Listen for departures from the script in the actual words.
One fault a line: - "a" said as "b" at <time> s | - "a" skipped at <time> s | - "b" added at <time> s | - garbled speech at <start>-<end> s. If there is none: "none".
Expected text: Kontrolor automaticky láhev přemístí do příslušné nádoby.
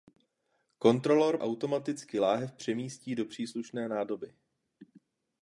none